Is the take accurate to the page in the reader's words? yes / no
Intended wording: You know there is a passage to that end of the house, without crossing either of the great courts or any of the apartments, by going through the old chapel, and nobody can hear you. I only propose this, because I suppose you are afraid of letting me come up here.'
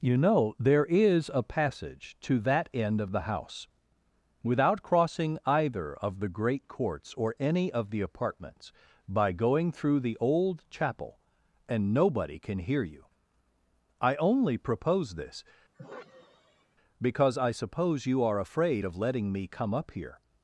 yes